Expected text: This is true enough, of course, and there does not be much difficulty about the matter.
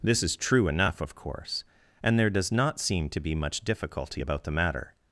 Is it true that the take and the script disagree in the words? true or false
true